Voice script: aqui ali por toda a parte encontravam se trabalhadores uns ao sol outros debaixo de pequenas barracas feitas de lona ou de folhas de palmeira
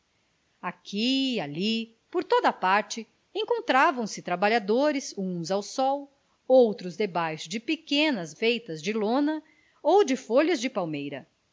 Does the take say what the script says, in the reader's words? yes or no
no